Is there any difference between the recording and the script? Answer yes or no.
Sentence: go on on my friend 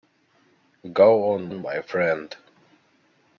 no